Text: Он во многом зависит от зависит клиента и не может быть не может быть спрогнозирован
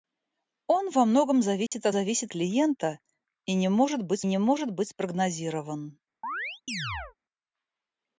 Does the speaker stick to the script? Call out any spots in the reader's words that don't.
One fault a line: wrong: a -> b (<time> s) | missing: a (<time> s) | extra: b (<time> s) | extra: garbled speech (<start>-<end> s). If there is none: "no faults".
no faults